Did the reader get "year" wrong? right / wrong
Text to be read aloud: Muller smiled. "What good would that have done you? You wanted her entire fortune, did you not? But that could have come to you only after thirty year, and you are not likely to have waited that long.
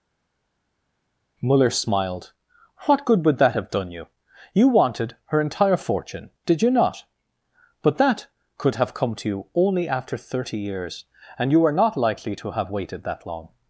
wrong